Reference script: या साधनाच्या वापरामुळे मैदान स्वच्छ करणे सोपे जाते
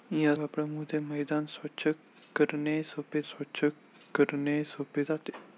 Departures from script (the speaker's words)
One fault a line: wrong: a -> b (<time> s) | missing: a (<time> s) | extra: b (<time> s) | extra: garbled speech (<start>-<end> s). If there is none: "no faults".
missing: साधनाच्या (0.3 s)
extra: स्वच्छ करणे सोपे (3.2 s)